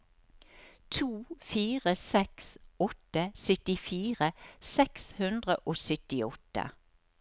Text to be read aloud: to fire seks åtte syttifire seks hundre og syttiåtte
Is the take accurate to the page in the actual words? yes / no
yes